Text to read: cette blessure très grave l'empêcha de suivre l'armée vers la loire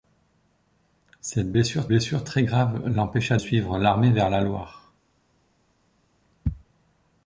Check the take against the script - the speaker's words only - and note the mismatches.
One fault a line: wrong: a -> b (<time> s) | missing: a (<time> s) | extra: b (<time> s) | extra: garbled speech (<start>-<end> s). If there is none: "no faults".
extra: blessure (1.9 s)
missing: de (3.4 s)